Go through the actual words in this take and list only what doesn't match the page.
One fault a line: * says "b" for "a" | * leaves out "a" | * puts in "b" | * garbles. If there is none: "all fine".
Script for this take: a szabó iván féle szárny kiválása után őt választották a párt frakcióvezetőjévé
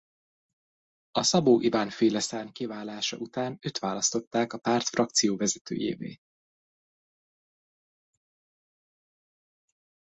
all fine